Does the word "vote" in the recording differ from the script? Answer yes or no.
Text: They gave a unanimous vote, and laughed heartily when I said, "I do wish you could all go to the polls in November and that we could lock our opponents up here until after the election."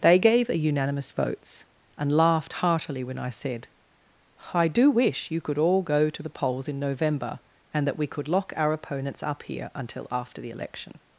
yes